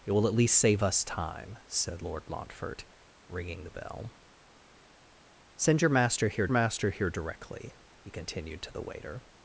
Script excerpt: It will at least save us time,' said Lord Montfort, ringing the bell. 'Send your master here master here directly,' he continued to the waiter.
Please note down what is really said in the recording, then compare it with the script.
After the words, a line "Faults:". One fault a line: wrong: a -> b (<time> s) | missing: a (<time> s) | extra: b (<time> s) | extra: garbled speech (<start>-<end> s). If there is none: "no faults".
It will at least save us time,' said Lord Montfort, ringing the bell. 'Send your master here master here directly,' he continued to the waiter.
Faults:
no faults